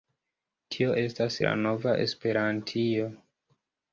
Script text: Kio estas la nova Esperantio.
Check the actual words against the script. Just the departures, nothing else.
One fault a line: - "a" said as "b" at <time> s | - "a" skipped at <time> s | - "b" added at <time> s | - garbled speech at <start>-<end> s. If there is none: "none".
- "Kio" said as "Tio" at 0.8 s